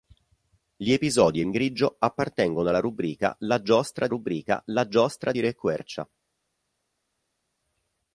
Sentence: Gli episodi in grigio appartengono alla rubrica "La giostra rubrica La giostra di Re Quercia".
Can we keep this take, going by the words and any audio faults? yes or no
yes